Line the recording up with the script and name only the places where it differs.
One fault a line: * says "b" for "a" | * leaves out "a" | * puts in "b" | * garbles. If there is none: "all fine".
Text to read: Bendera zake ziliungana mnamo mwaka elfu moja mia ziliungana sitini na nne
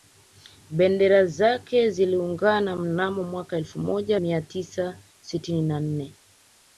* says "tisa" for "ziliungana"